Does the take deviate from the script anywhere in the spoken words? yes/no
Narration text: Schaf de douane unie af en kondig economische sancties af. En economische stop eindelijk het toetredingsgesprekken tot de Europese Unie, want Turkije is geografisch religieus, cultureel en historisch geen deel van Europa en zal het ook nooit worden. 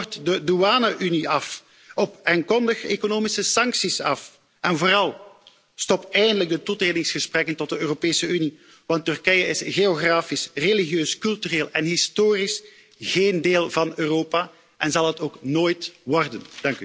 yes